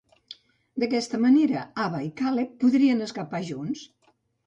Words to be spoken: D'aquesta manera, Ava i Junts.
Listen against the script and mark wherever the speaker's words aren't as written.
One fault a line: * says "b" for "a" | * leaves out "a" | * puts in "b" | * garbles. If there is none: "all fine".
* puts in "Caleb podrien escapar"